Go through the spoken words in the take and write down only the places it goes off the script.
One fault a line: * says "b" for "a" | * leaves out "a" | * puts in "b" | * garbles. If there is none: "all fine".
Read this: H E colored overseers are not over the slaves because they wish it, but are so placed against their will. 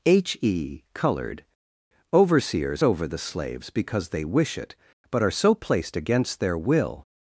* leaves out "are not"